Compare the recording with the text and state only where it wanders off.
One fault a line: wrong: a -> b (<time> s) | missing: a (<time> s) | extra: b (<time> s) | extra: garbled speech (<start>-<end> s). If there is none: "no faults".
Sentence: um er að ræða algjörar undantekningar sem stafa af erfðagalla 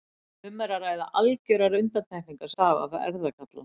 missing: sem (2.5 s)